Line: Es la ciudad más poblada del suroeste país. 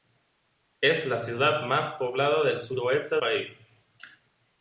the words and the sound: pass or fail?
pass